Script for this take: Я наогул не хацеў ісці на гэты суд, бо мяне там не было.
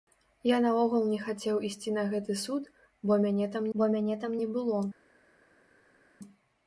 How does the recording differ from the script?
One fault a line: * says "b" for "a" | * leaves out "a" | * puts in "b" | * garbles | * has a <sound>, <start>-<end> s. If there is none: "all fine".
* puts in "бо мяне там"